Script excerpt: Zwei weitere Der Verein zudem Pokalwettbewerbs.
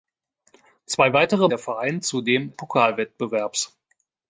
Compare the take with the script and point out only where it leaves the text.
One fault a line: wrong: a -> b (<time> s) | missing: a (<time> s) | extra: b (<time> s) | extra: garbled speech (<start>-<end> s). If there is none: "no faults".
no faults